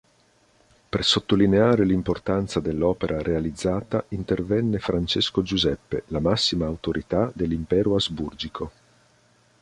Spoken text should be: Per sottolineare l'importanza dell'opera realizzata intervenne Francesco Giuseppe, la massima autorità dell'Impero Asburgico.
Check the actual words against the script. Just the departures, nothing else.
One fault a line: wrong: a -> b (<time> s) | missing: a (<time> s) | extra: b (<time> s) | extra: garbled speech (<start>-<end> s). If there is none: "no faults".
no faults